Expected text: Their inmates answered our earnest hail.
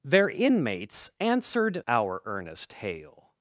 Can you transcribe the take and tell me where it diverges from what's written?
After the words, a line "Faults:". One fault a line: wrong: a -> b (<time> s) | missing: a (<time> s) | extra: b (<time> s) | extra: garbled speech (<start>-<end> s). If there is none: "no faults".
Their inmates answered our earnest hail.
Faults:
no faults